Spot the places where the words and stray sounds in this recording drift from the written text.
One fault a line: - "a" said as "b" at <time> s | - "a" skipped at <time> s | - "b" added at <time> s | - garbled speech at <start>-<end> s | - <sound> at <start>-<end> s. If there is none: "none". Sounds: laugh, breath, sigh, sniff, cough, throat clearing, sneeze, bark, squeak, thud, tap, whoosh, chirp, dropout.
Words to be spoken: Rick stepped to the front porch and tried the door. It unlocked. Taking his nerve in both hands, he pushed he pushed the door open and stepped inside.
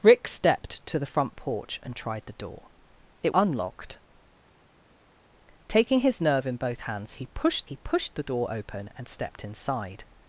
none